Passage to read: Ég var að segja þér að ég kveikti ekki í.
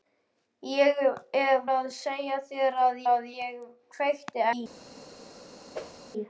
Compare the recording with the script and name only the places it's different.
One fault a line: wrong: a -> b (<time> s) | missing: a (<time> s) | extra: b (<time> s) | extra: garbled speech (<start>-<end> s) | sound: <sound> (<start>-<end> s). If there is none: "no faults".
missing: var (1.0 s)
extra: að (3.1 s)
missing: ekki (4.4 s)
sound: whoosh (5.7-6.0 s)